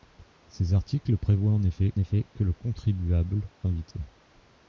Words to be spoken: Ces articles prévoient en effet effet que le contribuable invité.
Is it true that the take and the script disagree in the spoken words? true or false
false